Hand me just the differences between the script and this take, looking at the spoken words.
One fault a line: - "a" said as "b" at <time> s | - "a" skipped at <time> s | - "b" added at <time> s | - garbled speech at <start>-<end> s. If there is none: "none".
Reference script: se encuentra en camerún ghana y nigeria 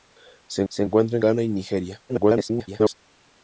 - "se" added at 0.7 s
- "camerún" skipped at 1.2 s
- garbled speech at 2.1-2.9 s